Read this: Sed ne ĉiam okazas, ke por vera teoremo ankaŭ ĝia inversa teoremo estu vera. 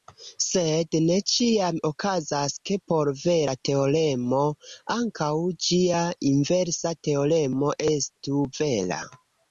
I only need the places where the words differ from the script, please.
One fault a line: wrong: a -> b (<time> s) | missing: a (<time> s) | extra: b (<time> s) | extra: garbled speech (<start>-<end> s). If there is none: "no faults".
no faults